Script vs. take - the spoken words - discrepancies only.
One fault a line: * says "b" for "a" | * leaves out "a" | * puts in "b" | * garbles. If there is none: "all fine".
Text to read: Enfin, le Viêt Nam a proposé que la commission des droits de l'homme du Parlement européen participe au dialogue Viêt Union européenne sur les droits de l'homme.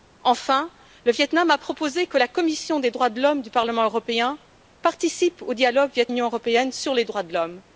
all fine